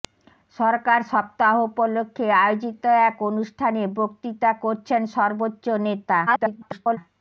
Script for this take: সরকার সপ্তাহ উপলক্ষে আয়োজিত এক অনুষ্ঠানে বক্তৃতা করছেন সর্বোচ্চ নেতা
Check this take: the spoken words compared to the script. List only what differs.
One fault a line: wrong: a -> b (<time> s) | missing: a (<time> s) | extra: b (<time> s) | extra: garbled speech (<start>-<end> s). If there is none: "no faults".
extra: garbled speech (6.3-7.0 s)